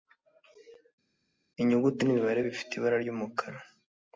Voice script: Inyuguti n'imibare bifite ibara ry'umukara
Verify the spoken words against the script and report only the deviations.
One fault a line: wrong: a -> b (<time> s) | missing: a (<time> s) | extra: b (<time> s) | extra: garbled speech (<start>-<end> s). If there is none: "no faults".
no faults